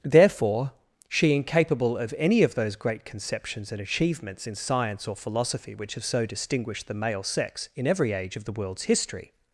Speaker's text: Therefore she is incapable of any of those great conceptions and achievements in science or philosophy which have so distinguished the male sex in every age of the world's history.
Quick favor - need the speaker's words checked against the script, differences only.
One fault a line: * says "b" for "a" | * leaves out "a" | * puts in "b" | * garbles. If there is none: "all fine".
* leaves out "is"